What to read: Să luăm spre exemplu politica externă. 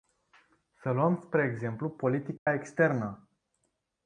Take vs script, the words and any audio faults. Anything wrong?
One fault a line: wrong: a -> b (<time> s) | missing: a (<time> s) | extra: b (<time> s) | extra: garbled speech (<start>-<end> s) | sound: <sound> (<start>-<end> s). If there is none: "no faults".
sound: dropout (2.4-2.5 s)